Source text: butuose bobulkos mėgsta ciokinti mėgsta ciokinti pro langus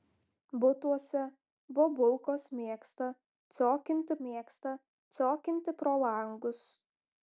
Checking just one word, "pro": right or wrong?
right